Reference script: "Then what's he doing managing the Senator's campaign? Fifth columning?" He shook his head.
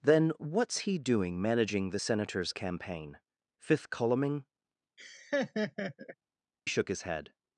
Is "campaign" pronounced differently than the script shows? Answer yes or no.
no